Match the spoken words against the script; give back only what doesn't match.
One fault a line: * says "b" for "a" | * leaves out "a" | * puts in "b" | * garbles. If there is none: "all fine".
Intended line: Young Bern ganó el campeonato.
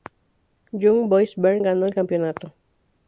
* puts in "Boys"